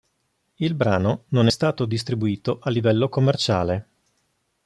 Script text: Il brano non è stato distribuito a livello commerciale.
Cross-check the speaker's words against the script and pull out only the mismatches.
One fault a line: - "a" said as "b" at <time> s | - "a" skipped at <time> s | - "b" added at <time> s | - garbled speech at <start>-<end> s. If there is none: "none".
none